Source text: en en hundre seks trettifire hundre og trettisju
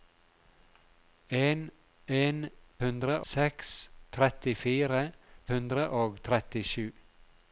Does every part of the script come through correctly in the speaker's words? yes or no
yes